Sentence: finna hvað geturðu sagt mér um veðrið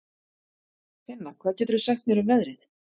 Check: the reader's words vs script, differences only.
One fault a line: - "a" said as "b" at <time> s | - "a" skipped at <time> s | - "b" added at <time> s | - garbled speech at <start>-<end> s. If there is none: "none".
none